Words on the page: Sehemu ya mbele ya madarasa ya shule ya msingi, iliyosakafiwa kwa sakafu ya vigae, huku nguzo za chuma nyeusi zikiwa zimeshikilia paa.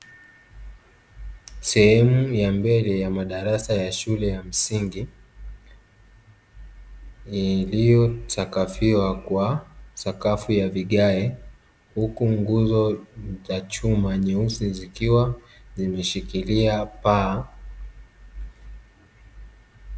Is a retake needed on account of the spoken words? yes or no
no